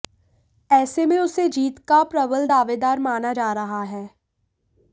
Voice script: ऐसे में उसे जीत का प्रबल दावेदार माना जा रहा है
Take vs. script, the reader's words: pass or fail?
pass